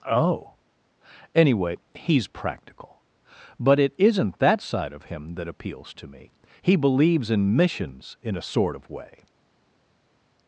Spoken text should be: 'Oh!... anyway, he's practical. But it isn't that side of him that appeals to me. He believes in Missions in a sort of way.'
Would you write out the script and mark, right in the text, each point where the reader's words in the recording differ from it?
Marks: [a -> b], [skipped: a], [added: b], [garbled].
'Oh!... anyway, he's practical. But it isn't that side of him that appeals to me. He believes in Missions in a sort of way.'